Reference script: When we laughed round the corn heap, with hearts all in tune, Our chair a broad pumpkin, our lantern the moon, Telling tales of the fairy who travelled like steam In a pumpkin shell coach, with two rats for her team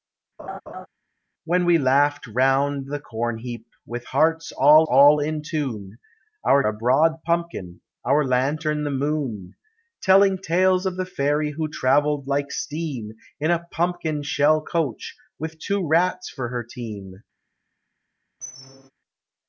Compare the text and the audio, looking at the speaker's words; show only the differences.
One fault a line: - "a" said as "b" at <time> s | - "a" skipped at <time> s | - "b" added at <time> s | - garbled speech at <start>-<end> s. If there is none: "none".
- "all" added at 4.8 s
- "chair" skipped at 6.6 s